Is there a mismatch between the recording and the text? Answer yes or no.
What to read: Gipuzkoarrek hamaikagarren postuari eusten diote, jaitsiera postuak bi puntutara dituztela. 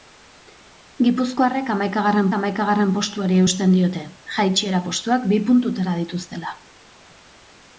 yes